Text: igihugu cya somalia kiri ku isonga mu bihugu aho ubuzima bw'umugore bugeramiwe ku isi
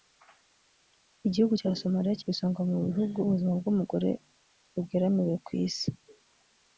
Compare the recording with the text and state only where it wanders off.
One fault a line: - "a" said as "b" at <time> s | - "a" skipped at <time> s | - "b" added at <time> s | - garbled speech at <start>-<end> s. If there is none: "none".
- "kiri" skipped at 2.2 s
- "aho" skipped at 3.2 s